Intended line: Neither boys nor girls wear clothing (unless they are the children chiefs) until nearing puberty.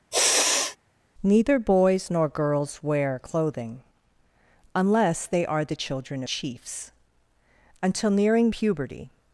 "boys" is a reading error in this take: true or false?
false